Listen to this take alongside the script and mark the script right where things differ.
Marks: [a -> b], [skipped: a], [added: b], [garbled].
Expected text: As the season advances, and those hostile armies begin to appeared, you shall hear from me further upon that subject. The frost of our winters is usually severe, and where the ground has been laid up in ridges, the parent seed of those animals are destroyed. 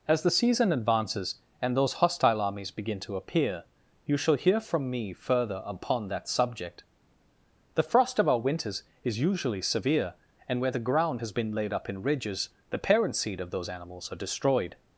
As the season advances, and those hostile armies begin to [appeared, -> appear] you shall hear from me further upon that subject. The frost of our winters is usually severe, and where the ground has been laid up in ridges, the parent seed of those animals are destroyed.